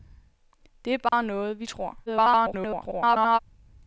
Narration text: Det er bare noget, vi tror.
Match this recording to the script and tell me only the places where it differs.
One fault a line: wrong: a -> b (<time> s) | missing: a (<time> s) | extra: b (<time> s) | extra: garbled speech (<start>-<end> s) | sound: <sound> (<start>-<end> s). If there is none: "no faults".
sound: dropout (1.1-1.1 s)
extra: garbled speech (2.1-3.4 s)